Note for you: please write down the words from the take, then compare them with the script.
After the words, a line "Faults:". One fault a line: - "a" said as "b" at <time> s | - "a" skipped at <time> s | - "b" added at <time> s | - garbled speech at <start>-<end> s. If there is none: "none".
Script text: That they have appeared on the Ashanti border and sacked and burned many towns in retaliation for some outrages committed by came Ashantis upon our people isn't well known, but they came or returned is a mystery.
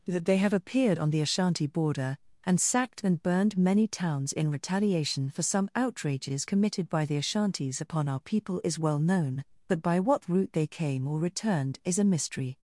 That they have appeared on the Ashanti border and sacked and burned many towns in retaliation for some outrages committed by the Ashantis upon our people is well known, but by what route they came or returned is a mystery.
Faults:
- "came" said as "the" at 7.0 s
- "isn't" said as "is" at 8.6 s
- "by what route" added at 9.8 s